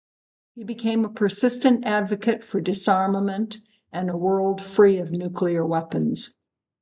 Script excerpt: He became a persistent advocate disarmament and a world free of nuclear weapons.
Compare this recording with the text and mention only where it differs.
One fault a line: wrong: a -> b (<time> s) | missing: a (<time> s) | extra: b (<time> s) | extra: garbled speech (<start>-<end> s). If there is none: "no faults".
extra: for (2.4 s)